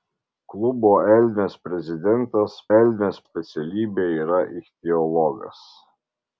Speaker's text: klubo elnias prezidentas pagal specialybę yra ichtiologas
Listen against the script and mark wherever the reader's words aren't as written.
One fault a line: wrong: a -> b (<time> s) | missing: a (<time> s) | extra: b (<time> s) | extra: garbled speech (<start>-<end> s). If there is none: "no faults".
wrong: pagal -> elnias (2.8 s)